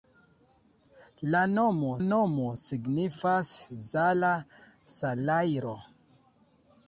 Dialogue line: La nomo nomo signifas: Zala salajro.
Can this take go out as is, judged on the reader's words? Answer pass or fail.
pass